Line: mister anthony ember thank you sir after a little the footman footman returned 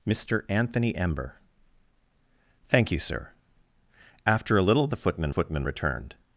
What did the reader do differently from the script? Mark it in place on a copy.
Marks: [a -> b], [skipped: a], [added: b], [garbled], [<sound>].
mister anthony ember thank you sir after a little the footman footman returned